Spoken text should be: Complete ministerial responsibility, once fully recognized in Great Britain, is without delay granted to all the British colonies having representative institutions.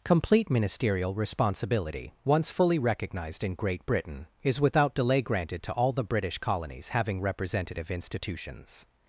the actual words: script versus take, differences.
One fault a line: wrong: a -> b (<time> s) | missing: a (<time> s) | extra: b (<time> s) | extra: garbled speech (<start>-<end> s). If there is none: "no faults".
no faults